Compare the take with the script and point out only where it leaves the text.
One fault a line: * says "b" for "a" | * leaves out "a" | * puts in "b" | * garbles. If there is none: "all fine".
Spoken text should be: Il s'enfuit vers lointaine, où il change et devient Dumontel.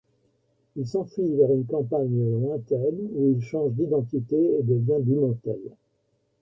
* puts in "une campagne"
* puts in "d'identité"